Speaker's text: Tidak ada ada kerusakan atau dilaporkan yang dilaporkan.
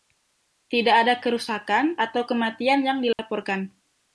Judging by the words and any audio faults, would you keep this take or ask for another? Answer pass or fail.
fail